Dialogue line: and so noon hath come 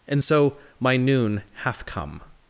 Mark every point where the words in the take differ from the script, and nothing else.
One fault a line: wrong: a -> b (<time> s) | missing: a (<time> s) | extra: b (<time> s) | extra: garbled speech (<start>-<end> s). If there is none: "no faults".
extra: my (0.8 s)